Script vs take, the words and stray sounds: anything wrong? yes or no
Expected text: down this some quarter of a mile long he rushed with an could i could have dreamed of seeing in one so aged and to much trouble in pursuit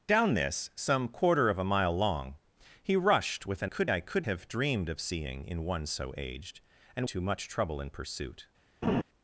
yes